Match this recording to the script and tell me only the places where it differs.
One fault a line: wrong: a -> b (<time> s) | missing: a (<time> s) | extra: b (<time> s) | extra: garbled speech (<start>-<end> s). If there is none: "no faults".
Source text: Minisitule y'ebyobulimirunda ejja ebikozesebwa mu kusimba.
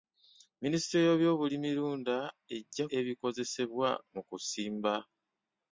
no faults